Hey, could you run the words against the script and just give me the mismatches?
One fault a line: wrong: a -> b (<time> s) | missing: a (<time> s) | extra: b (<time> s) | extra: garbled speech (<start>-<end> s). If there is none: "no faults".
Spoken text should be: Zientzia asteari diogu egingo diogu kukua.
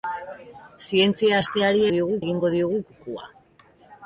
no faults